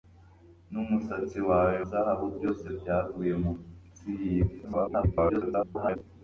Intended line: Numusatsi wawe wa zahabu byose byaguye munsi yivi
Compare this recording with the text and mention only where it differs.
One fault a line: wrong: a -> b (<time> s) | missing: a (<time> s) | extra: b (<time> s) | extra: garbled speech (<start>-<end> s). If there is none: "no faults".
missing: wa (1.8 s)
extra: garbled speech (4.6-6.0 s)